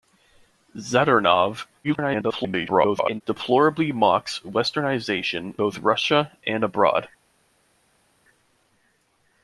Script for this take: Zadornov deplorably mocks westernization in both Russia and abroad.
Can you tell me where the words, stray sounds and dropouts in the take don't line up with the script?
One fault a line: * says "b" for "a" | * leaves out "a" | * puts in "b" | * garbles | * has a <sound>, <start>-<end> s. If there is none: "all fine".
* garbles
* leaves out "in"